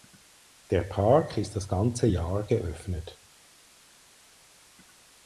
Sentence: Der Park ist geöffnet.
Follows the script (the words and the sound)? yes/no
no